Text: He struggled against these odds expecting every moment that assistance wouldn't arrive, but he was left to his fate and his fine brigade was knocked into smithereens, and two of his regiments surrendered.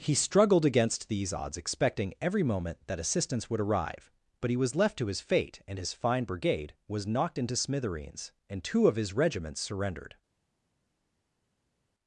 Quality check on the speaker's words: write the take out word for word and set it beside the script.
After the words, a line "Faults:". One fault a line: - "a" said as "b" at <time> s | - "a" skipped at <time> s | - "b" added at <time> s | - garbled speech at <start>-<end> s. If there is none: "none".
He struggled against these odds expecting every moment that assistance would arrive, but he was left to his fate and his fine brigade was knocked into smithereens, and two of his regiments surrendered.
Faults:
- "wouldn't" said as "would" at 3.5 s